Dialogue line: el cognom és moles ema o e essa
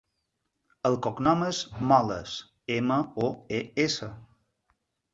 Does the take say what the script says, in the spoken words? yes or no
yes